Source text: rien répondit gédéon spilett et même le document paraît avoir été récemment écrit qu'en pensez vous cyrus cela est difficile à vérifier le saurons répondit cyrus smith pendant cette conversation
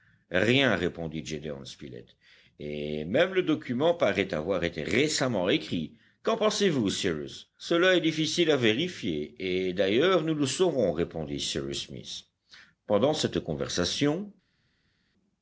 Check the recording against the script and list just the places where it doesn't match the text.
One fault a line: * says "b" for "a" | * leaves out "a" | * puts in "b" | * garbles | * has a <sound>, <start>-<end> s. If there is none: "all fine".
* puts in "et d'ailleurs nous"